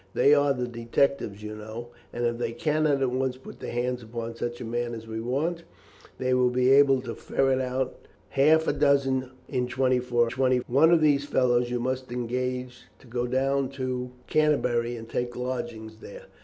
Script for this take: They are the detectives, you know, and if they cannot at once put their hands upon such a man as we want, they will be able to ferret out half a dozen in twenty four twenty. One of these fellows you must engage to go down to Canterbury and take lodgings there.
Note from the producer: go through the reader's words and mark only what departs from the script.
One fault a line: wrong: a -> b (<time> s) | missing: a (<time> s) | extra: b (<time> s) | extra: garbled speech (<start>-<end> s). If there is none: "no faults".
no faults